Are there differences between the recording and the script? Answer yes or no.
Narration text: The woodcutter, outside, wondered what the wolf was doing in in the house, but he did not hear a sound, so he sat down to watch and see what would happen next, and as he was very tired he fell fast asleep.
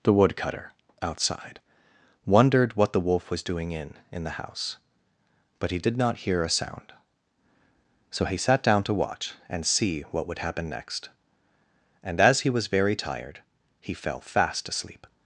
no